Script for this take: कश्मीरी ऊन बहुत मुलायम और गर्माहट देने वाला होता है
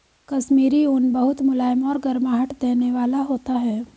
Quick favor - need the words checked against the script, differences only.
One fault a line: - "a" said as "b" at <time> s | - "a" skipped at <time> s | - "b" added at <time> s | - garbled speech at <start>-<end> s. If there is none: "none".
none